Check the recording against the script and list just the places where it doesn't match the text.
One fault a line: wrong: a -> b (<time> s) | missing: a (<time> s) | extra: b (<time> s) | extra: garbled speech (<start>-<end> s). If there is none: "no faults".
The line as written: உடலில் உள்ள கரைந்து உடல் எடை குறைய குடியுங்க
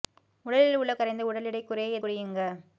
no faults